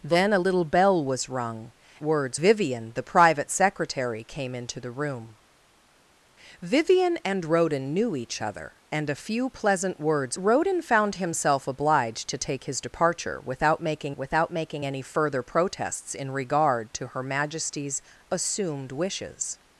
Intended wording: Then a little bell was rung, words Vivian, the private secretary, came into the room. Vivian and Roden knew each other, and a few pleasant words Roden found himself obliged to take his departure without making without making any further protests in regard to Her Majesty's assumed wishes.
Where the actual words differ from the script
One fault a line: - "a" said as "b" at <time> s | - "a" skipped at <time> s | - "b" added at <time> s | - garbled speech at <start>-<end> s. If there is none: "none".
none